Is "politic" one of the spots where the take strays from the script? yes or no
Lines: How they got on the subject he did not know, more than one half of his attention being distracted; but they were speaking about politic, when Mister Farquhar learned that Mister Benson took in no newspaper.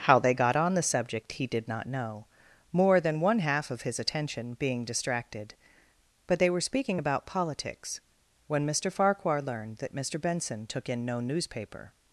yes